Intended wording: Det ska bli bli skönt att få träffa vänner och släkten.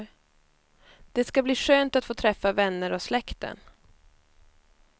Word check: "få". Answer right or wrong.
right